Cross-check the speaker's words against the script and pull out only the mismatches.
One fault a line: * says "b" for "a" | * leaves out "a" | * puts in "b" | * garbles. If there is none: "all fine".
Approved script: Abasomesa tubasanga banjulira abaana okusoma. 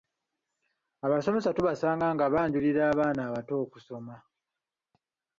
* puts in "nga"
* puts in "abato"